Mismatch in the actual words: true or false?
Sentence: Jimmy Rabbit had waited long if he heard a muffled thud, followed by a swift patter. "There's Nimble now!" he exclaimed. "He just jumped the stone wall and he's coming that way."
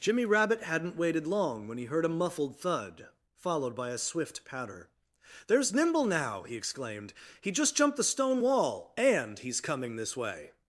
true